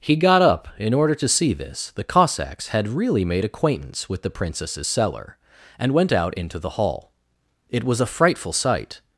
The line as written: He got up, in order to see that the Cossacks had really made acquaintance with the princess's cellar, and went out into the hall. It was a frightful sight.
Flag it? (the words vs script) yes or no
yes